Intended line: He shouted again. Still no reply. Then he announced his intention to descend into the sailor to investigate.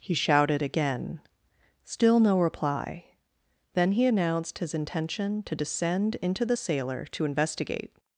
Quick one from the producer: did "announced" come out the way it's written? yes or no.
yes